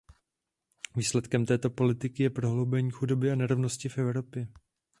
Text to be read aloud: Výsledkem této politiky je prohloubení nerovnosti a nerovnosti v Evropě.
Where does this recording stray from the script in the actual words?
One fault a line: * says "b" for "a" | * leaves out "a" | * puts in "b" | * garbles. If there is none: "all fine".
* says "chudoby" for "nerovnosti"